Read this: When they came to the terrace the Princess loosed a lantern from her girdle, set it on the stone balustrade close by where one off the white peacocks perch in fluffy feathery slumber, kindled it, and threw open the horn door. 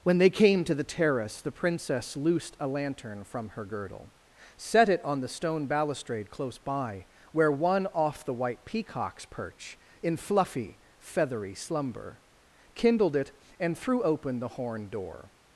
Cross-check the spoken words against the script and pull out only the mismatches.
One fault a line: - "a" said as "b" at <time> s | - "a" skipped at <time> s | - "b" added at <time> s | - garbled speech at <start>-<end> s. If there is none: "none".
none